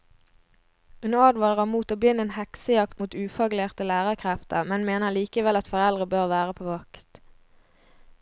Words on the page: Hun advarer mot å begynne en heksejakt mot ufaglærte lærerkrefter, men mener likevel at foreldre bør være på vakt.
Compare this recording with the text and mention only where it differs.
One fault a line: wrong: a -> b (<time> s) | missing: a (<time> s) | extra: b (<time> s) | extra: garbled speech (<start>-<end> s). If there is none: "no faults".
no faults